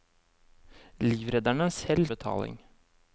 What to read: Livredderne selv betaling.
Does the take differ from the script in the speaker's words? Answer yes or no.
no